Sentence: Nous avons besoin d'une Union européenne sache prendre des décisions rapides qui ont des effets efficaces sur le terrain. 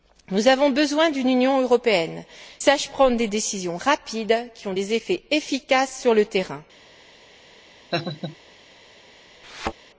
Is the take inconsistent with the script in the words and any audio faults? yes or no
yes